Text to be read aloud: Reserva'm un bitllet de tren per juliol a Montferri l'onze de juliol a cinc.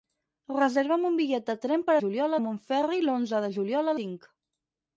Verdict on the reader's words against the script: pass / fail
pass